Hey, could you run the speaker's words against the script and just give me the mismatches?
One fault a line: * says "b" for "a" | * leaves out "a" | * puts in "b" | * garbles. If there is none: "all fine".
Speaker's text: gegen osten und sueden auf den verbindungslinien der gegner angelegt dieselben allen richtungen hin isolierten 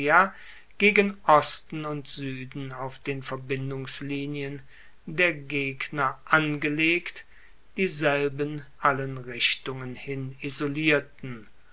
all fine